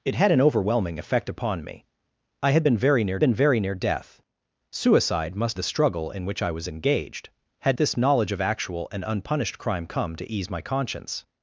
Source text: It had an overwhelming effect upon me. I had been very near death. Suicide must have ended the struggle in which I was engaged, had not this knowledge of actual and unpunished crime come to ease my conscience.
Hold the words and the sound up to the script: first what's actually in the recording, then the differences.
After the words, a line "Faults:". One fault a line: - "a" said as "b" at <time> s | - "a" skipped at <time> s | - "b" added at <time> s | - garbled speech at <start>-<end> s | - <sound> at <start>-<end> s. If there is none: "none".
It had an overwhelming effect upon me. I had been very near been very near death. Suicide must the struggle in which I was engaged, had this knowledge of actual and unpunished crime come to ease my conscience.
Faults:
- "been very near" added at 3.2 s
- "have ended" skipped at 5.6 s
- "not" skipped at 7.8 s